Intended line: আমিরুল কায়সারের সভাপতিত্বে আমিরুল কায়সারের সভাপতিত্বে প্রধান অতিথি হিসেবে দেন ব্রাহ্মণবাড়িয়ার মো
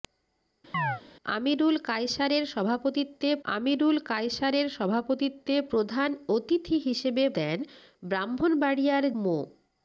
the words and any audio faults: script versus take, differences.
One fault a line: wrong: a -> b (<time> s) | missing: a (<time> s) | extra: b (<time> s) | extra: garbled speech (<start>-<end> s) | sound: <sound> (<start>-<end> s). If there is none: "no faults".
sound: chirp (0.7-1.0 s)